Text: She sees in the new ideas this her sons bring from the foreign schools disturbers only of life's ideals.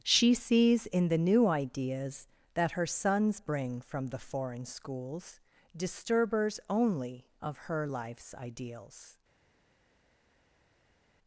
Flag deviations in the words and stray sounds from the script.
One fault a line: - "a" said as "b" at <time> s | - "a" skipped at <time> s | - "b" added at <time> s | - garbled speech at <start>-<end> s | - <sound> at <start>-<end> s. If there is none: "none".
- "this" said as "that" at 2.5 s
- "her" added at 7.6 s